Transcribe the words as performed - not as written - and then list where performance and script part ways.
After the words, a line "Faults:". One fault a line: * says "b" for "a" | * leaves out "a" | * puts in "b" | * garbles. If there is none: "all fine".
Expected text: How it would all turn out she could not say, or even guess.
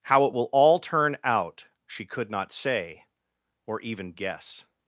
How it will all turn out she could not say, or even guess.
Faults:
* says "will" for "would"